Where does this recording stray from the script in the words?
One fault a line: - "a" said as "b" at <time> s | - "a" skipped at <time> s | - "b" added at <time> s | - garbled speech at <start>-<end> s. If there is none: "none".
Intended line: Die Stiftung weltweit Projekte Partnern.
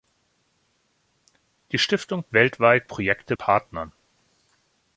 none